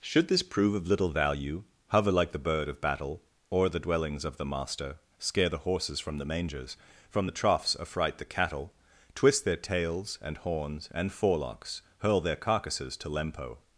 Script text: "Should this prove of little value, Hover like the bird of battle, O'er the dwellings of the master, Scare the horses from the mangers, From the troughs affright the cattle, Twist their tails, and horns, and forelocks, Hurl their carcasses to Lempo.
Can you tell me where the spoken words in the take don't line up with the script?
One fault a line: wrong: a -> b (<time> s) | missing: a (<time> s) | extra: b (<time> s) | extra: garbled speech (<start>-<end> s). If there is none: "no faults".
no faults